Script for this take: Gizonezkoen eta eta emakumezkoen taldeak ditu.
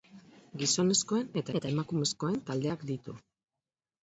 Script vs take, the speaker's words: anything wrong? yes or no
no